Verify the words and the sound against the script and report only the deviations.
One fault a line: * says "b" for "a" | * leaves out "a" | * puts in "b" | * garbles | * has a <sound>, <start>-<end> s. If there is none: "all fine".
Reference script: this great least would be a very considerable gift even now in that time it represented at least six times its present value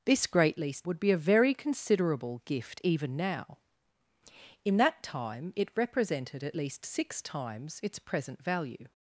all fine